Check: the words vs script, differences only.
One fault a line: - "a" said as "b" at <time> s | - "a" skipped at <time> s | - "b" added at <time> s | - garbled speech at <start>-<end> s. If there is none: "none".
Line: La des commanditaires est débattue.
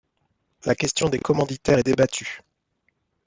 - "question" added at 0.7 s